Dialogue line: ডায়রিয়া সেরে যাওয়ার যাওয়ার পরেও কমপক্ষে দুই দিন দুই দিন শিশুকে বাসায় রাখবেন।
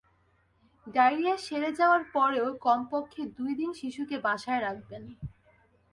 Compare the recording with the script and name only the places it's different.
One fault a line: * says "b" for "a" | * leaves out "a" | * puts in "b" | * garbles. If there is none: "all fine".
* leaves out "যাওয়ার"
* leaves out "দুই দিন"